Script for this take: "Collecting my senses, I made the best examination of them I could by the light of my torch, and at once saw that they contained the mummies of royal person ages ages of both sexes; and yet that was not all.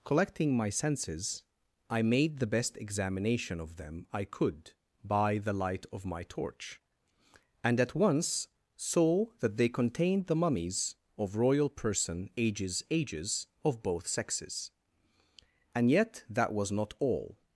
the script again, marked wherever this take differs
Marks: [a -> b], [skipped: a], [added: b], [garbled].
"Collecting my senses, I made the best examination of them I could by the light of my torch, and at once saw that they contained the mummies of royal person ages ages of both sexes; and yet that was not all.